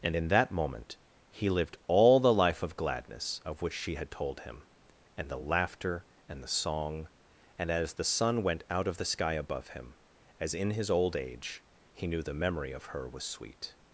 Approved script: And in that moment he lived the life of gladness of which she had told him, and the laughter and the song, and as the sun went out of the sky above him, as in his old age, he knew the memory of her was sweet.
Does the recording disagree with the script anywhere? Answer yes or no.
yes